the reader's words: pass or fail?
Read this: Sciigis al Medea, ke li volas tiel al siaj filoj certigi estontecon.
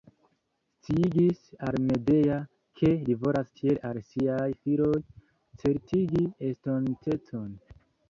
pass